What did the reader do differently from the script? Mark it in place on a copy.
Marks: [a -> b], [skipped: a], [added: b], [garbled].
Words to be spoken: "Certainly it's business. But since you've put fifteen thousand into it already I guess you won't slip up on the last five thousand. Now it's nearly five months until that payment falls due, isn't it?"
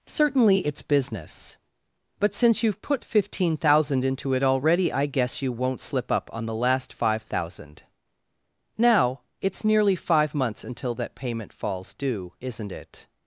"Certainly it's business. But since you've put fifteen thousand into it already I guess you won't slip up on the last five thousand. Now it's nearly five months until that payment falls due, isn't it?"